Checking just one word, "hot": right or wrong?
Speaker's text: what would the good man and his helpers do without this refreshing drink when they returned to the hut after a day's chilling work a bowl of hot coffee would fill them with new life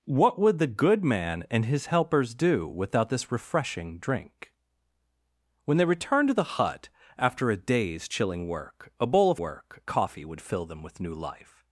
wrong